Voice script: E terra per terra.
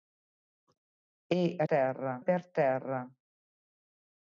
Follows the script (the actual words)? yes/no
yes